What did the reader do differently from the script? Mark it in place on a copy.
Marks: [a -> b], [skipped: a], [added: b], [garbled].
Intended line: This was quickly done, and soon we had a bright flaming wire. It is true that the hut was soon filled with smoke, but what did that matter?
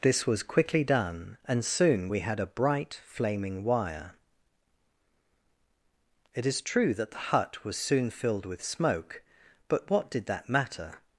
This was quickly done, and soon we had a bright flaming wire. It is true that the hut was soon filled with smoke, but what did that matter?